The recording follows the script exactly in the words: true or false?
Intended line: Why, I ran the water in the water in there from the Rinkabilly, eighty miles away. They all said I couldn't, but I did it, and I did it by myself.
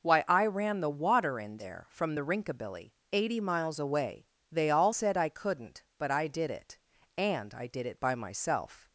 false